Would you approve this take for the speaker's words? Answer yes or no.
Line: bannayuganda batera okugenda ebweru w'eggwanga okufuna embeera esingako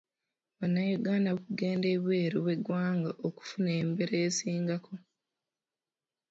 no